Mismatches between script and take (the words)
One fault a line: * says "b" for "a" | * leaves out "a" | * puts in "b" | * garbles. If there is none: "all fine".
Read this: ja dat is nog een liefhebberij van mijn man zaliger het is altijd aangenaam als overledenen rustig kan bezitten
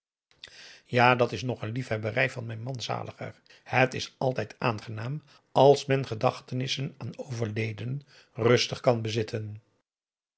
* puts in "men gedachtenissen aan"